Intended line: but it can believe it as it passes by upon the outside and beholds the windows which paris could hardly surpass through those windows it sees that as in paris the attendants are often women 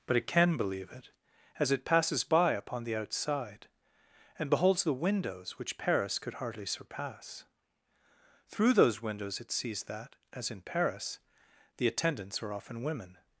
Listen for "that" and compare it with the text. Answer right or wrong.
right